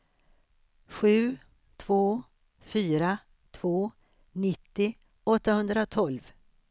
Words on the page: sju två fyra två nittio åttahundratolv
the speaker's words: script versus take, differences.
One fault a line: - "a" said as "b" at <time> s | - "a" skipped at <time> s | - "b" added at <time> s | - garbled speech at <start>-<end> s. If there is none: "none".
none